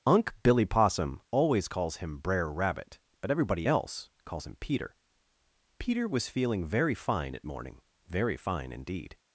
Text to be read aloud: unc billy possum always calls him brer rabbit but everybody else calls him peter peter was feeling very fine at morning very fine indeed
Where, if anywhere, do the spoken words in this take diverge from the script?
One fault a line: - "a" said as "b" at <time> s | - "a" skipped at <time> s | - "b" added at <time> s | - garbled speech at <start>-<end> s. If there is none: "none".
none